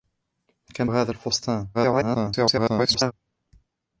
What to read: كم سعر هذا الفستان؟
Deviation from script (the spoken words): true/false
true